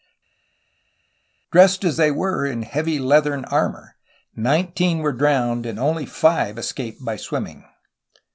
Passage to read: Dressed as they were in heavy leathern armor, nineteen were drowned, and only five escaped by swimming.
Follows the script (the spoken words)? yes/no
yes